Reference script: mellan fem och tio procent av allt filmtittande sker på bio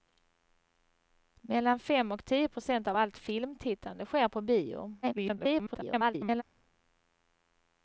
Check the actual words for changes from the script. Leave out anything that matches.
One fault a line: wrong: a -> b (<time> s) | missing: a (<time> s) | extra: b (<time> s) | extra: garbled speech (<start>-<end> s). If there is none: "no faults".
extra: garbled speech (5.0-6.4 s)